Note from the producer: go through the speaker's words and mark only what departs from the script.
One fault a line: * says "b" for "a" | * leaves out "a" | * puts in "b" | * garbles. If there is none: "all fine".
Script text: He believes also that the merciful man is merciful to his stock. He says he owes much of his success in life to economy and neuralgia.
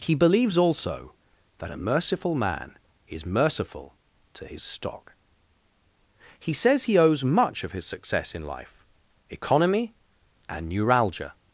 * says "a" for "the"
* leaves out "to"